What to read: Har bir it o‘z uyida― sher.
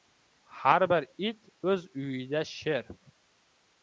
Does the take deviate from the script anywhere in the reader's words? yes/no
no